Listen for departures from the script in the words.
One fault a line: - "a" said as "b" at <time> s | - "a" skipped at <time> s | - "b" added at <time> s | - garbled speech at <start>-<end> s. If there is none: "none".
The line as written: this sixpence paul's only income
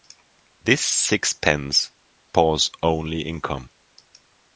none